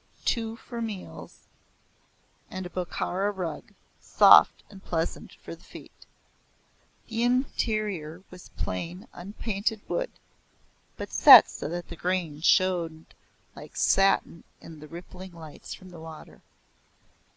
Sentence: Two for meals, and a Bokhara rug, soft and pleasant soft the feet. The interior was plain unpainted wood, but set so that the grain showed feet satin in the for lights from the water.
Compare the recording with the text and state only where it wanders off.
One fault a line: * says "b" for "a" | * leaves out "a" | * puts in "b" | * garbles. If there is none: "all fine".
* says "for" for "soft"
* says "like" for "feet"
* says "rippling" for "for"